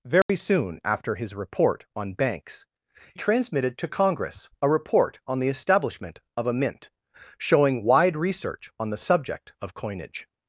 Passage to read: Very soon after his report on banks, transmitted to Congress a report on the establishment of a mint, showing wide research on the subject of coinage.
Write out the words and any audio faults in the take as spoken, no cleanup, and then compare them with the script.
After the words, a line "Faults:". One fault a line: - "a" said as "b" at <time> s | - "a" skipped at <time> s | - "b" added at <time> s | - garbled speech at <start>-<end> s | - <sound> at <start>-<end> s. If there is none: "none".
Very soon after his report on banks, transmitted to Congress a report on the establishment of a mint, showing wide research on the subject of coinage.
Faults:
- dropout at 0.2-0.3 s